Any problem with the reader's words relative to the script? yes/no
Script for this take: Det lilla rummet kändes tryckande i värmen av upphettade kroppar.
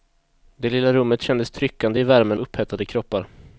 yes